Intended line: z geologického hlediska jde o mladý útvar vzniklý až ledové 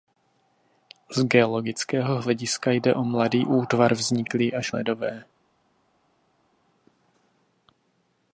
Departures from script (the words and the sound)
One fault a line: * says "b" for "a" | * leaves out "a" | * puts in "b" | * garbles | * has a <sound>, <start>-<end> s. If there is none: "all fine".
all fine